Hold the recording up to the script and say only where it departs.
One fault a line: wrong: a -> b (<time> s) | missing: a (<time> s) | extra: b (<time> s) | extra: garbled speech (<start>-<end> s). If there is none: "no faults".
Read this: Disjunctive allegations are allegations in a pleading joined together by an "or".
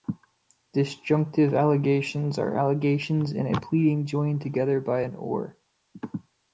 no faults